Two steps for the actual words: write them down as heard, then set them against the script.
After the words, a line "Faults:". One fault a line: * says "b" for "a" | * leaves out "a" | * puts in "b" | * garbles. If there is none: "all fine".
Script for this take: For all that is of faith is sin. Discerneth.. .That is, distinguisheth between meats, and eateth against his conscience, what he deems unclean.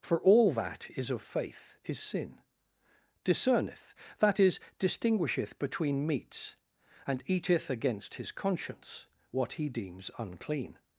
For all that is of faith is sin. Discerneth.. .That is, distinguisheth between meats, and eateth against his conscience, what he deems unclean.
Faults:
all fine